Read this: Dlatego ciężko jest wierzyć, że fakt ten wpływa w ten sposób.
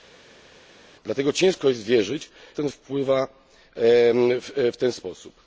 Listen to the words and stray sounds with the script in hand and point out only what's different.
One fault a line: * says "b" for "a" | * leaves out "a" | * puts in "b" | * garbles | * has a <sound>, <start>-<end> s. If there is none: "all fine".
* leaves out "że fakt"